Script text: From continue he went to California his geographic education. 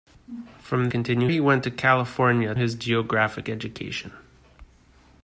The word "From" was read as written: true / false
true